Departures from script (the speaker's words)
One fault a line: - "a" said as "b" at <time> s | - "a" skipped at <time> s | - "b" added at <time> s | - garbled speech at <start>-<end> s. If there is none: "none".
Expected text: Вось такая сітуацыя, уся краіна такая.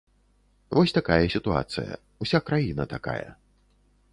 none